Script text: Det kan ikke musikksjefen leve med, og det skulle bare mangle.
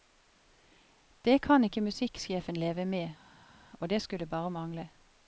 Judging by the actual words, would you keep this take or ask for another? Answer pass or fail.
pass